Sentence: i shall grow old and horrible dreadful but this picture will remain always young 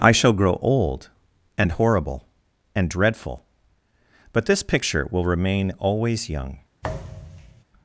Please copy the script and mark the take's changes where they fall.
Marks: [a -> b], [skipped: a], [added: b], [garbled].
i shall grow old and horrible [added: and] dreadful but this picture will remain always young